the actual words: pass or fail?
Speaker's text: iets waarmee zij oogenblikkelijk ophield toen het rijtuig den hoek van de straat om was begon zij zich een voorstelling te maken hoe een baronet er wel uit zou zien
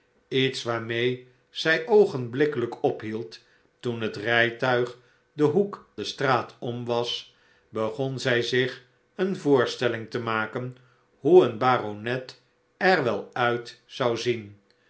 fail